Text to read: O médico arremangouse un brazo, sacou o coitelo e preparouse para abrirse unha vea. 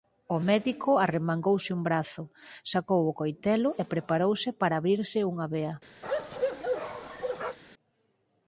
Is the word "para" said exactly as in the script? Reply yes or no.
yes